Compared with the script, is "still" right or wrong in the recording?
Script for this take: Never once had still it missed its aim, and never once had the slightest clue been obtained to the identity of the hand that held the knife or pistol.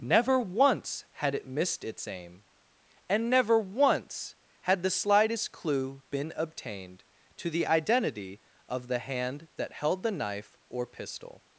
wrong